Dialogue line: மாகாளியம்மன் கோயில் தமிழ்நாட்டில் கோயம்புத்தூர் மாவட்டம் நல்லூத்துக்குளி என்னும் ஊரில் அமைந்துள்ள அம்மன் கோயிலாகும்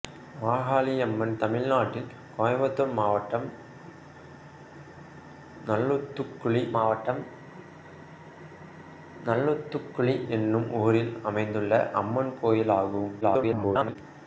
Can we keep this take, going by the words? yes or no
no